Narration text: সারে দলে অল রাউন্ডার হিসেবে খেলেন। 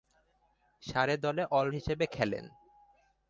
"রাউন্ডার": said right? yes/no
no